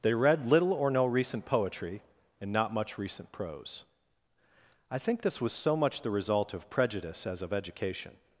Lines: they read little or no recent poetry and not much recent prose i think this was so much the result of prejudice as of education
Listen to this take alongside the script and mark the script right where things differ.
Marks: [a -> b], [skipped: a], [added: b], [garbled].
they read little or no recent poetry and not much recent prose i think this was so much the result of prejudice as of education